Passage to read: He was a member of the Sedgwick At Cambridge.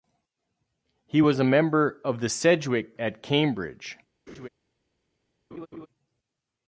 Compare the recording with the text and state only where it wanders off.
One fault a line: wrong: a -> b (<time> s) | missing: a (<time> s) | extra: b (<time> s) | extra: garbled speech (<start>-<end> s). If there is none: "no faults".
no faults